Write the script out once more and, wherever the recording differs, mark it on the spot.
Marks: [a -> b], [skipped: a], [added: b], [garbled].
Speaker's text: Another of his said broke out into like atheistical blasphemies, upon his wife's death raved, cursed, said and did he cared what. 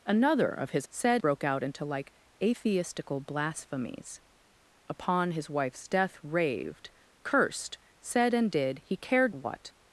Another of his said broke out into like atheistical blasphemies, upon his wife's death raved, cursed, said and did he cared what.